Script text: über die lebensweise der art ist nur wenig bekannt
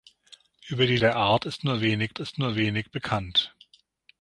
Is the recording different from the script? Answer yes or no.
yes